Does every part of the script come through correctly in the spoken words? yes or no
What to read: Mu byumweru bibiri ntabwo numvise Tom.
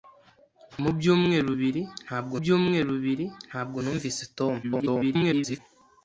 no